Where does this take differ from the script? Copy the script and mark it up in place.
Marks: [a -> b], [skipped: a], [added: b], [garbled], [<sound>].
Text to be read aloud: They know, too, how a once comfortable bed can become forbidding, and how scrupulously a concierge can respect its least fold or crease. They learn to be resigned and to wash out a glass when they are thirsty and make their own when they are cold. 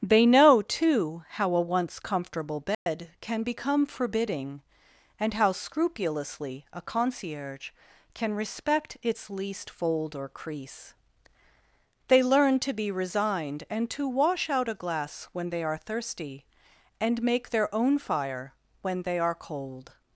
They know, too, how a once comfortable bed [dropout] can become forbidding, and how scrupulously a concierge can respect its least fold or crease. They learn to be resigned and to wash out a glass when they are thirsty and make their own [added: fire] when they are cold.